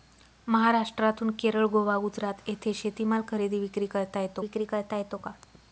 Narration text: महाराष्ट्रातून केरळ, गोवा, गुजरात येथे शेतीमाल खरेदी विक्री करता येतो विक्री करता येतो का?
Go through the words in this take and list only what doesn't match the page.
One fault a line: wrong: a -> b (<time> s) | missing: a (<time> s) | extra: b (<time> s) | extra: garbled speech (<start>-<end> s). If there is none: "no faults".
no faults